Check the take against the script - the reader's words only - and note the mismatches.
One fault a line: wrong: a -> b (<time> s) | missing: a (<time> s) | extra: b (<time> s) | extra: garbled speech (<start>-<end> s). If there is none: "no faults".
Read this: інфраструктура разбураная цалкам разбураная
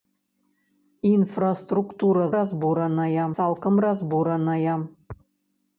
no faults